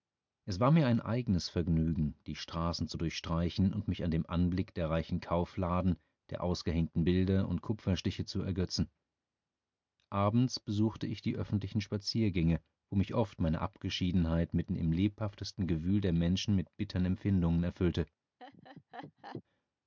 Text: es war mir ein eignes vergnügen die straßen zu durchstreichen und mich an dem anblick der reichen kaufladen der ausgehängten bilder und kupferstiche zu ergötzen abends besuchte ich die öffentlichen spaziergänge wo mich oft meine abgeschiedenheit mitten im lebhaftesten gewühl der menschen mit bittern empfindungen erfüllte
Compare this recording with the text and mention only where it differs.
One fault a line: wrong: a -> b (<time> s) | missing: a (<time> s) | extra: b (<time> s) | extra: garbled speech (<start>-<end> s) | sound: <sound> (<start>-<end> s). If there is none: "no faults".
sound: laugh (18.4-19.4 s)